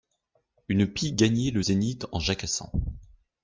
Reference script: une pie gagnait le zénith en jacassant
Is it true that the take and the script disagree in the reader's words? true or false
false